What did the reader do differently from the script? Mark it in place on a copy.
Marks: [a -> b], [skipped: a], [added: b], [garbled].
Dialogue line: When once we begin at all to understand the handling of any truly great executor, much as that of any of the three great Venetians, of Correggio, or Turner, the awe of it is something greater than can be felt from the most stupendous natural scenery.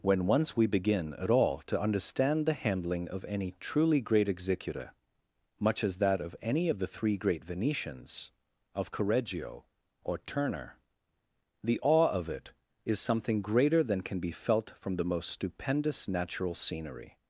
When once we begin at all to understand the handling of any truly great executor, much as that of any of the three great Venetians, of Correggio, or Turner, the awe of it is something greater than can be felt from the most stupendous natural scenery.